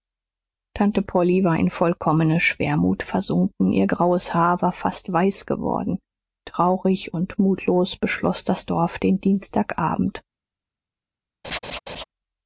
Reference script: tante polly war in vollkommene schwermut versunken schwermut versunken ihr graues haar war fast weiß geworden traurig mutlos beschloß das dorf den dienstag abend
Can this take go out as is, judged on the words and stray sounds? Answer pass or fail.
fail